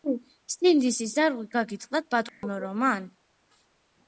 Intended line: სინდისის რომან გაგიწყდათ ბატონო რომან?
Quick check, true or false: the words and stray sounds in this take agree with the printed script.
false